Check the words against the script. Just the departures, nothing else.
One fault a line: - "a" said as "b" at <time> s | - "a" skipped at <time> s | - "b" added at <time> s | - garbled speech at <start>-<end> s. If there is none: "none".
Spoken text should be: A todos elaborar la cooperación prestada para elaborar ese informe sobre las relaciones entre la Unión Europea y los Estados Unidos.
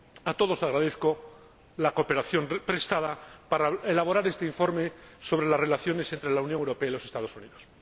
- "elaborar" said as "agradezco" at 0.6 s
- "ese" said as "este" at 4.3 s